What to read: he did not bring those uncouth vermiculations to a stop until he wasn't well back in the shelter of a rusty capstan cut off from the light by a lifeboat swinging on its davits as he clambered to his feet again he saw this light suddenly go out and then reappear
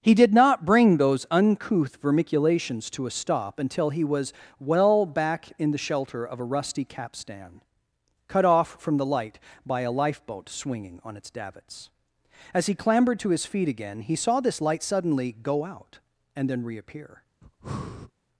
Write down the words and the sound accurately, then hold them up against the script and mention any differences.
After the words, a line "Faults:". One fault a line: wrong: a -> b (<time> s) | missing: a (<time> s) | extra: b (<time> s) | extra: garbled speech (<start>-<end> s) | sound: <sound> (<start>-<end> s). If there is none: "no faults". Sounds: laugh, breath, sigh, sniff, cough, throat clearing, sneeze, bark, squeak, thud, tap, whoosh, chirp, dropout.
he did not bring those uncouth vermiculations to a stop until he was well back in the shelter of a rusty capstan cut off from the light by a lifeboat swinging on its davits as he clambered to his feet again he saw this light suddenly go out and then reappear
Faults:
wrong: wasn't -> was (4.0 s)
sound: breath (17.4-18.1 s)